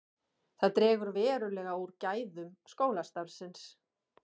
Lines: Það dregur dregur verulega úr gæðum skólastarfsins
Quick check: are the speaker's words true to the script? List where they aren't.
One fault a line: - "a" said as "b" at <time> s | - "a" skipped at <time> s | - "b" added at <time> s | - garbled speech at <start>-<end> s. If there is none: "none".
- "dregur" skipped at 1.1 s